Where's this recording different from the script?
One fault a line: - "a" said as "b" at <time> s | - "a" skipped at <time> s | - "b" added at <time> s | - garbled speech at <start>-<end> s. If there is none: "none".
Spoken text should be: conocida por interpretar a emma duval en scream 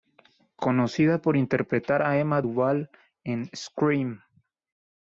none